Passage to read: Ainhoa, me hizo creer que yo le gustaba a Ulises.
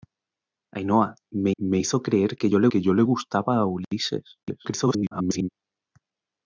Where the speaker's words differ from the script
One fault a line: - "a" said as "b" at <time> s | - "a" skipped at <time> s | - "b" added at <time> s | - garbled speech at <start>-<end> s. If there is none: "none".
- "me" added at 1.6 s
- "que yo le" added at 2.7 s
- garbled speech at 4.4-5.5 s